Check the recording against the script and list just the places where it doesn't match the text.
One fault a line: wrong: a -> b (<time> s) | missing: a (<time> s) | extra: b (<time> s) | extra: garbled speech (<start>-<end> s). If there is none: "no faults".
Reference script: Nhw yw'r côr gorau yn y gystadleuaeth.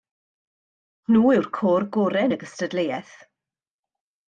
no faults